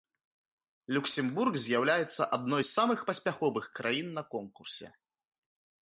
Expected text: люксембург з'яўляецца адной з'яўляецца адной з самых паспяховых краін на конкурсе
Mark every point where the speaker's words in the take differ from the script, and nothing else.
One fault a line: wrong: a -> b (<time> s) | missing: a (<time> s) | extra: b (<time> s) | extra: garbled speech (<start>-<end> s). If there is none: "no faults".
missing: з'яўляецца адной (2.6 s)